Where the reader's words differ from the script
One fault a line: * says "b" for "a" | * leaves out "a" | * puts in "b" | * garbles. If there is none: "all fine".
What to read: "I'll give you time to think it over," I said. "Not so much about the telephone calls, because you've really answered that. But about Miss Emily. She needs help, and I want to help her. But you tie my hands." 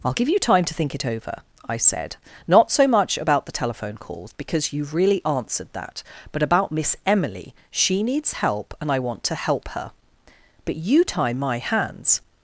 all fine